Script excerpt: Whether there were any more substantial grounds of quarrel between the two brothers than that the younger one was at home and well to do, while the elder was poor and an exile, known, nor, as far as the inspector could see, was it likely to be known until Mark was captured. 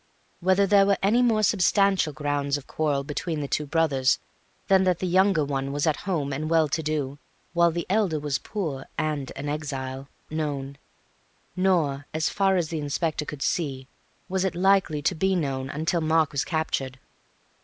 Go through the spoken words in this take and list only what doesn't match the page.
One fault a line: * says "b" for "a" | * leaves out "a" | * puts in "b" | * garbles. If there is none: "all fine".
all fine